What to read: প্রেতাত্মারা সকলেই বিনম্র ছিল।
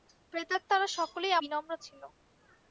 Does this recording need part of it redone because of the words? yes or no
no